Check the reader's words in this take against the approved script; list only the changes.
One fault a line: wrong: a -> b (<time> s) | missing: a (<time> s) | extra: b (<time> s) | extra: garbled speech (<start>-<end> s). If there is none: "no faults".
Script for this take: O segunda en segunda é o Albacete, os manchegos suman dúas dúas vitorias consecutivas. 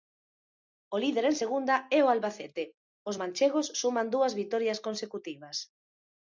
wrong: segunda -> líder (1.0 s)
missing: dúas (4.3 s)